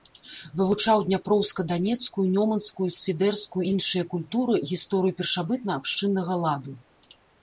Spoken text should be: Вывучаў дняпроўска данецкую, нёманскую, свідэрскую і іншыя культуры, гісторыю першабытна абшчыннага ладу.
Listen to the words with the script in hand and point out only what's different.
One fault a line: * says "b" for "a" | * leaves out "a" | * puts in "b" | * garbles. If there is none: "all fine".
all fine